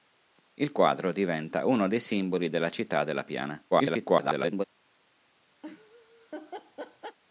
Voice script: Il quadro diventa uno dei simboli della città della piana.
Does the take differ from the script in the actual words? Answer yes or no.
yes